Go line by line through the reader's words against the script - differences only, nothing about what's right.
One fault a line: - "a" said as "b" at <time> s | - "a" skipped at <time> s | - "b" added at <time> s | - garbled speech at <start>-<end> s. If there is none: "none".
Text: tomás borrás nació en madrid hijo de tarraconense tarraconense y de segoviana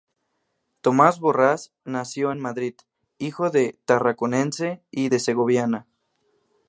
- "tarraconense" skipped at 4.8 s